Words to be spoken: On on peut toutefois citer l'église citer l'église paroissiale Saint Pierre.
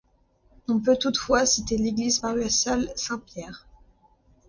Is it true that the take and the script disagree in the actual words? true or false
true